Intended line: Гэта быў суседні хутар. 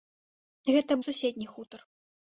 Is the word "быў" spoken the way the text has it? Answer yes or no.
no